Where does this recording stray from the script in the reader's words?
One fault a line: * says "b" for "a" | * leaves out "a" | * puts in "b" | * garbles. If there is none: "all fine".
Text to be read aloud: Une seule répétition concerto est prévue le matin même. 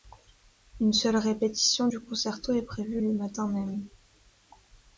* puts in "du"